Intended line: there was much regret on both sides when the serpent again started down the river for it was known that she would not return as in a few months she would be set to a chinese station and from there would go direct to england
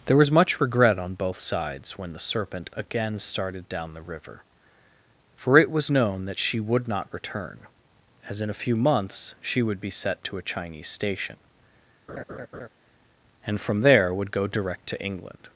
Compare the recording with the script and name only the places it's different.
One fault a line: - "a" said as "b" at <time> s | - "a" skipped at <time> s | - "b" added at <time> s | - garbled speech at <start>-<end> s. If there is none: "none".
none